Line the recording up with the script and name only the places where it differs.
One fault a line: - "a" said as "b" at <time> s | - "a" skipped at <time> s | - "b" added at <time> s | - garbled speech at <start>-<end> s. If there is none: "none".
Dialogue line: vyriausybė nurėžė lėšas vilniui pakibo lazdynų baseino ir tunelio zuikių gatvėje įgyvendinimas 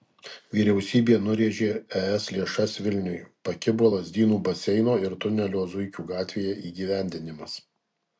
- "es" added at 2.0 s